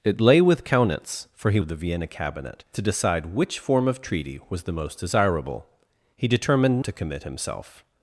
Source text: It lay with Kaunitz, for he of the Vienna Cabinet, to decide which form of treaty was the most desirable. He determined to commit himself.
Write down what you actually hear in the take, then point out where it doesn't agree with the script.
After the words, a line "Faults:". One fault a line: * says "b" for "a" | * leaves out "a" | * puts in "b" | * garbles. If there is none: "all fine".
It lay with Kaunitz, for he of the Vienna Cabinet, to decide which form of treaty was the most desirable. He determined to commit himself.
Faults:
all fine